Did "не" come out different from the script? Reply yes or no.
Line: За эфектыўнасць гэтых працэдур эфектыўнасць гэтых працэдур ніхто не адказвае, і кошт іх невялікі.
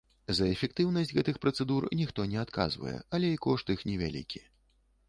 no